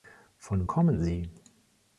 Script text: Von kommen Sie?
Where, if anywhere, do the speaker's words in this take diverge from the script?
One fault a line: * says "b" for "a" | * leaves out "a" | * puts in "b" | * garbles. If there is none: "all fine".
all fine